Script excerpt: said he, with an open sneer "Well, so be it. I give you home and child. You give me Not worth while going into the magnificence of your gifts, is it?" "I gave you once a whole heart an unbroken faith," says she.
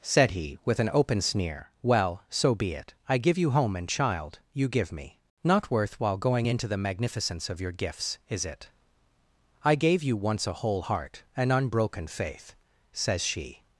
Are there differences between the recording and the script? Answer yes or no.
no